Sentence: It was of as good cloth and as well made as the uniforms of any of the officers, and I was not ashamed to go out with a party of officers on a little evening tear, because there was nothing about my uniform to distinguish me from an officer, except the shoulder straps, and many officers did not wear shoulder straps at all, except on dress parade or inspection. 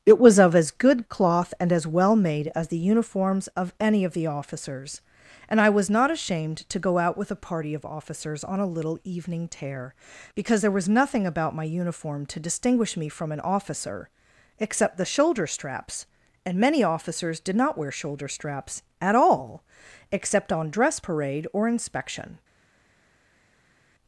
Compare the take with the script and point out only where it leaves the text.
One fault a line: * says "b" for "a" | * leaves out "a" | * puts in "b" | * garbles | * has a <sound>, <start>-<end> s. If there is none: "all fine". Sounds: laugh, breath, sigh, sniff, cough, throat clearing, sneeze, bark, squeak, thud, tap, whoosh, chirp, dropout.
all fine